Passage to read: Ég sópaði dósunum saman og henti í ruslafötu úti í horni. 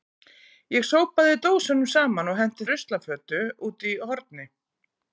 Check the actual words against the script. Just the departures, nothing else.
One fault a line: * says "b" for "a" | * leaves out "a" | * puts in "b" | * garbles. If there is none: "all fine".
all fine